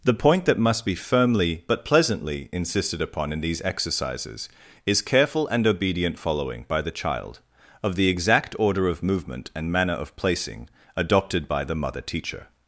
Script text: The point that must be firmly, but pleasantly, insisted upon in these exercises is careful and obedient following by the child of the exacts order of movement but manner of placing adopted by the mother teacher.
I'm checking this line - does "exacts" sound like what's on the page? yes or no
no